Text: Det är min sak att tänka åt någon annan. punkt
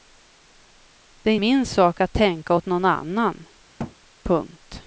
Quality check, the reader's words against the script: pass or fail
pass